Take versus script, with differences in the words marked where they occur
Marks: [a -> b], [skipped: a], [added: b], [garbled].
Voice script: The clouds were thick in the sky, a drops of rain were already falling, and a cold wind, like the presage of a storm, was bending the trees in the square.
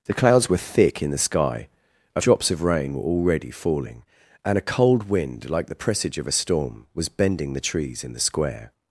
The clouds were thick in the sky, a drops of rain were already falling, and a cold wind, like the presage of a storm, was bending the trees in the square.